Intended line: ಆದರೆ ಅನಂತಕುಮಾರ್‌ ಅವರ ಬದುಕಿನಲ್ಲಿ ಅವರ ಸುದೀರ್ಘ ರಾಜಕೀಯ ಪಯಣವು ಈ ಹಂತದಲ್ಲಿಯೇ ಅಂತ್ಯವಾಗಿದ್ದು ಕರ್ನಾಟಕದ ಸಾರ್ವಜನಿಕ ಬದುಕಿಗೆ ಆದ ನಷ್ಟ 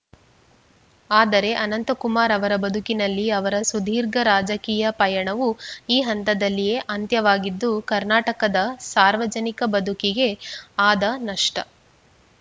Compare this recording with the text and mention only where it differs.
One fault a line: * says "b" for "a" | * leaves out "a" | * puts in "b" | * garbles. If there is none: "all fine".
all fine